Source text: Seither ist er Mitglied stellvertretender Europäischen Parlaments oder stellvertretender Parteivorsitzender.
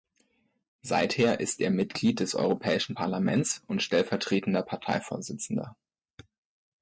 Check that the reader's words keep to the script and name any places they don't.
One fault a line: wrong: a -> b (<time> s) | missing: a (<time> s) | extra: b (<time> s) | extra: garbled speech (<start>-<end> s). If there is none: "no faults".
wrong: stellvertretender -> des (2.2 s)
wrong: oder -> und (3.7 s)